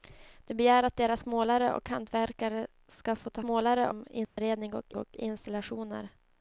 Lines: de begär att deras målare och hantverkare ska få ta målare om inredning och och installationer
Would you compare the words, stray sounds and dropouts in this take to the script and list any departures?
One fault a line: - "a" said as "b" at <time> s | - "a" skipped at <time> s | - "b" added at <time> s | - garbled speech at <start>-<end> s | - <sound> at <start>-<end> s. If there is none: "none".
- dropout at 4.2-4.4 s